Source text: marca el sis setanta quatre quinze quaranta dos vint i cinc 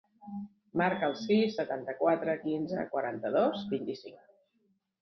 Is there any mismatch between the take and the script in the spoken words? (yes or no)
no